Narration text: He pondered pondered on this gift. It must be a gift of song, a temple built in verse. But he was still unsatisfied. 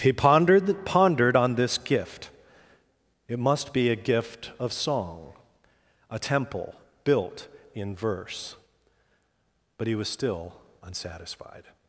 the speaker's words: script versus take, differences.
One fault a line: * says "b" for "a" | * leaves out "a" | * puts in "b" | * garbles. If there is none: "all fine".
all fine